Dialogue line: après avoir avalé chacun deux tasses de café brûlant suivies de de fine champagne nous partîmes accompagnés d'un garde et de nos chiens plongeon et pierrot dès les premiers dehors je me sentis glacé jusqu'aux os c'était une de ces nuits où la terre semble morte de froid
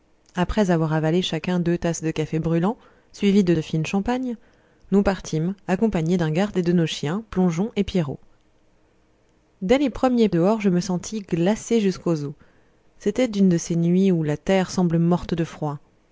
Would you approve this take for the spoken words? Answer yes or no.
yes